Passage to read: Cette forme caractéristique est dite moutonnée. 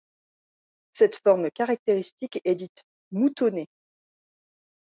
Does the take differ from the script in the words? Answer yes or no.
no